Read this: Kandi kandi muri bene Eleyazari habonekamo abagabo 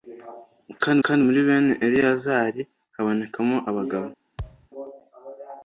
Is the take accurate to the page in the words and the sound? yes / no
no